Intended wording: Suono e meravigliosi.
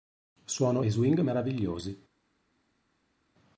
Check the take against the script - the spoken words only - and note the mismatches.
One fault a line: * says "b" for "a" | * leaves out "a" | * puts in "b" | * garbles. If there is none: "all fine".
* puts in "swing"